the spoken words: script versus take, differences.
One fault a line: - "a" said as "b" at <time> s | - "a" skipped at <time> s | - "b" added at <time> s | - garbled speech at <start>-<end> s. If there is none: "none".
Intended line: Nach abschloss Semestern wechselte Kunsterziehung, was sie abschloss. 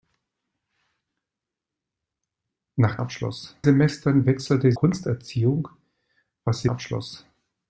none